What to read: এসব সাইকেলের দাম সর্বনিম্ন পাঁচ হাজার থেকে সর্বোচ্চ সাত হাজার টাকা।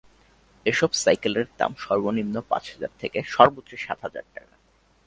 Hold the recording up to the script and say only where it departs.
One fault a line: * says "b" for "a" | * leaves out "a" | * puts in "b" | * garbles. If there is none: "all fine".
all fine